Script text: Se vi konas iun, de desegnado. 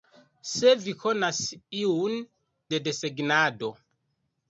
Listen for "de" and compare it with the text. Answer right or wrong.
right